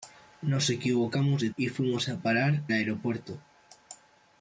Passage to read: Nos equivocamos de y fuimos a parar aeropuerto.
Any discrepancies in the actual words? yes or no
no